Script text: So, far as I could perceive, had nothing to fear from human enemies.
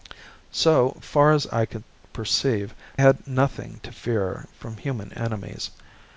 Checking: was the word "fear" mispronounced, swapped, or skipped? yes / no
no